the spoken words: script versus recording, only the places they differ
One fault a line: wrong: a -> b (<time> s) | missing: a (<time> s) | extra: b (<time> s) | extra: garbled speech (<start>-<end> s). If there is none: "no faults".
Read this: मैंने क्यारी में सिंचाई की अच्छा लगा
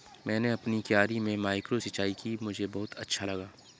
extra: अपनी (0.5 s)
extra: माइक्रो (1.4 s)
extra: मुझे बहुत (2.4 s)